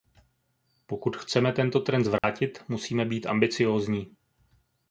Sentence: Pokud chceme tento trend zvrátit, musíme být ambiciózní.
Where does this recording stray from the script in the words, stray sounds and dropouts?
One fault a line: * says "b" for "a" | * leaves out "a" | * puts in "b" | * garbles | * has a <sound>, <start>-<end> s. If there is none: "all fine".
* has a dropout, 2.2-2.2 s